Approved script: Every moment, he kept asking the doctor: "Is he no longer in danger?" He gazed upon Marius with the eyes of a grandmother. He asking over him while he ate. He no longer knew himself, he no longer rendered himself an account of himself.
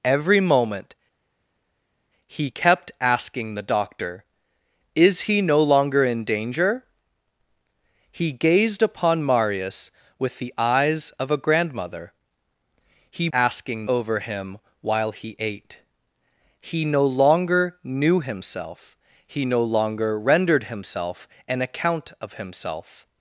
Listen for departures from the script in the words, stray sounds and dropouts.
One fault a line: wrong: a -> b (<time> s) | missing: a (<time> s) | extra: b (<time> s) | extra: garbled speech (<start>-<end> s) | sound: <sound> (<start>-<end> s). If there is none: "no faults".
no faults